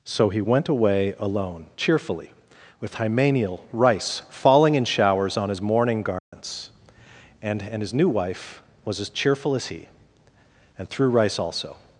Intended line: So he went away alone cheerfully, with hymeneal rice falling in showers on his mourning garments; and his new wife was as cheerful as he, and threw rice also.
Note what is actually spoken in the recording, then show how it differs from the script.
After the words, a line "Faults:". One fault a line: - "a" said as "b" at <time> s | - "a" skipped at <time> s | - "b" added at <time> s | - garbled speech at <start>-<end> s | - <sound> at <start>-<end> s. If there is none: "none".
So he went away alone cheerfully, with hymeneal rice falling in showers on his mourning garments; and and his new wife was as cheerful as he, and threw rice also.
Faults:
- dropout at 6.2-6.3 s
- "and" added at 7.6 s